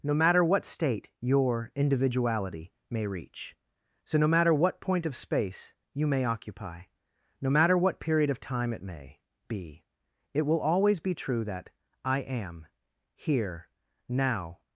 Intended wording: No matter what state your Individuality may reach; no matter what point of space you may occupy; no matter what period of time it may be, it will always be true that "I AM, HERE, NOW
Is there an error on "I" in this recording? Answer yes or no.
no